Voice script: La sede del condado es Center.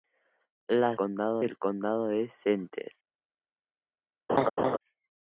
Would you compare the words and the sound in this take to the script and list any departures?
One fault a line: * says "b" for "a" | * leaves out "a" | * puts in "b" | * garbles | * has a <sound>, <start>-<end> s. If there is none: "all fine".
* says "condado" for "sede"
* has a laugh, 4.3-4.8 s